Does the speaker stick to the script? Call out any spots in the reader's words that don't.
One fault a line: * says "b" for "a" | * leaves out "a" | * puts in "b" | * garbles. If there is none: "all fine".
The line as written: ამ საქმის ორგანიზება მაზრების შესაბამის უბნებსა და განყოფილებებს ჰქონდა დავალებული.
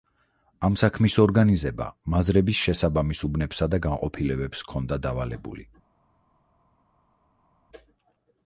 all fine